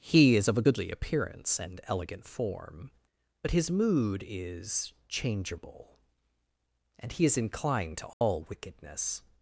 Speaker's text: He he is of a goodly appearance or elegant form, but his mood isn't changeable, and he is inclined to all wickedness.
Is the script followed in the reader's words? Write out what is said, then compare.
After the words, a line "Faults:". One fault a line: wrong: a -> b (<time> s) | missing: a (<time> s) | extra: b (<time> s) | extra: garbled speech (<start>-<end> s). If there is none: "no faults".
He is of a goodly appearance and elegant form, but his mood is changeable, and he is inclined to all wickedness.
Faults:
missing: he (0.3 s)
wrong: or -> and (1.6 s)
wrong: isn't -> is (4.2 s)